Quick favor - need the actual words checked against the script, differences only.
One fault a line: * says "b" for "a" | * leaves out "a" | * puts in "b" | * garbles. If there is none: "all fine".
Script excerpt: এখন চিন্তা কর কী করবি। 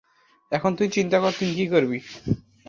* puts in "তুই"
* puts in "তুই"